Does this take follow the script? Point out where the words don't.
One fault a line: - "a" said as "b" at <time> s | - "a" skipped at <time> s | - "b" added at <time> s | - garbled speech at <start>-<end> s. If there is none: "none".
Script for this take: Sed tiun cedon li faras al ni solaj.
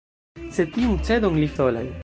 - "faras al ni" skipped at 1.5 s